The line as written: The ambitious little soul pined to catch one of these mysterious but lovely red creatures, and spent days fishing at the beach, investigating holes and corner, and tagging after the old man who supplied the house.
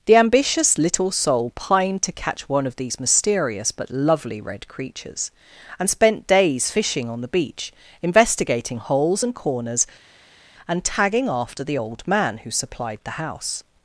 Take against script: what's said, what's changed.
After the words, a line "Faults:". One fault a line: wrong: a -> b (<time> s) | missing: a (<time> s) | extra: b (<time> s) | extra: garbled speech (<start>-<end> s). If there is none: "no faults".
The ambitious little soul pined to catch one of these mysterious but lovely red creatures, and spent days fishing on the beach, investigating holes and corners, and tagging after the old man who supplied the house.
Faults:
wrong: at -> on (7.1 s)
wrong: corner -> corners (9.3 s)